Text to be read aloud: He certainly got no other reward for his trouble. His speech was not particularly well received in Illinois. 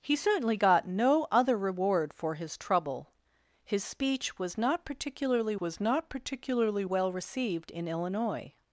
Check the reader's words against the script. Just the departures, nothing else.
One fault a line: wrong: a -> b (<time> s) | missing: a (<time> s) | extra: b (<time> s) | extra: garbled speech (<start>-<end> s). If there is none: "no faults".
extra: was not particularly (5.6 s)